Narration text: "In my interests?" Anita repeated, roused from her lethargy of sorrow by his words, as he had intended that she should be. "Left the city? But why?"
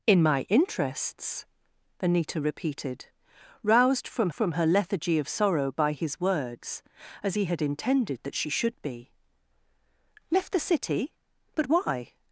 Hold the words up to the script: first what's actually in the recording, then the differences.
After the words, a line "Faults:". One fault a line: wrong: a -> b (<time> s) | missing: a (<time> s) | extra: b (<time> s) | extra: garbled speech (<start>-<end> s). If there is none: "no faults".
"In my interests?" Anita repeated, roused from from her lethargy of sorrow by his words, as he had intended that she should be. "Left the city? But why?"
Faults:
extra: from (4.3 s)